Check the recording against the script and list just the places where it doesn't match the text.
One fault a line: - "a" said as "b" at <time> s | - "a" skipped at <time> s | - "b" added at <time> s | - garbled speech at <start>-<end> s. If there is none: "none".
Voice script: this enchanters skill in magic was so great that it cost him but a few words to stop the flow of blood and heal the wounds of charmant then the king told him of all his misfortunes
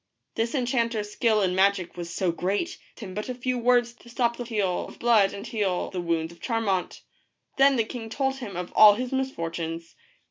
- "that it cost" skipped at 2.8 s
- "flow" said as "heal" at 4.4 s